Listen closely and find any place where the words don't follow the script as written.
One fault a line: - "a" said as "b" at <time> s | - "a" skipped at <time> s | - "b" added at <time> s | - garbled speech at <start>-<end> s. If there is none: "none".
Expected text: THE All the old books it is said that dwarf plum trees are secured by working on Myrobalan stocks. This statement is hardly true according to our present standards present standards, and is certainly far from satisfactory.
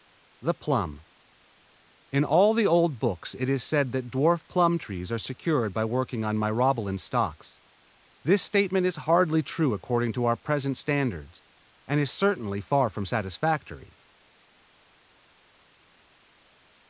- "PLUM In" added at 0.6 s
- "present standards" skipped at 11.4 s